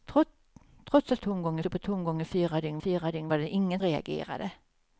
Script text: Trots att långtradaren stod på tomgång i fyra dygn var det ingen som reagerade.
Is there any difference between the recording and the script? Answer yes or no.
yes